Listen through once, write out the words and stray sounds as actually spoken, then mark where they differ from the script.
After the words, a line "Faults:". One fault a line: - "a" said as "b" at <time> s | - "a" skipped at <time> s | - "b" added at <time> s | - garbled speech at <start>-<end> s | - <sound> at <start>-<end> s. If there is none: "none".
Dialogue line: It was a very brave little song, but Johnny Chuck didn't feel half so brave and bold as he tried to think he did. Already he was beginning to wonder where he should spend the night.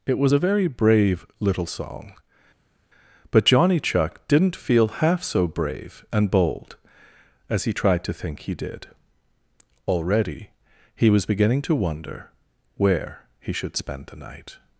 It was a very brave little song, but Johnny Chuck didn't feel half so brave and bold as he tried to think he did. Already he was beginning to wonder where he should spend the night.
Faults:
none